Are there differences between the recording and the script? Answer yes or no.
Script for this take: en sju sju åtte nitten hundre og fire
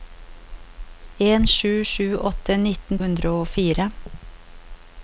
no